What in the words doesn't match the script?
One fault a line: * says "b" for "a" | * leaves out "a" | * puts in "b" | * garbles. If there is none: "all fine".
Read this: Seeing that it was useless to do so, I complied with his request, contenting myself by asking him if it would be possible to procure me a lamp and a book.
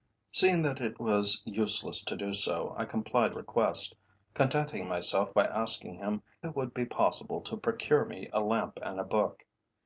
* leaves out "with his"
* leaves out "if"